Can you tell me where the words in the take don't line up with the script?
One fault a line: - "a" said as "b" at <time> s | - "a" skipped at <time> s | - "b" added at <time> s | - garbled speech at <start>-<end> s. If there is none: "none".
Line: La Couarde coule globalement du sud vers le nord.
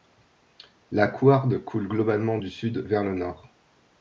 none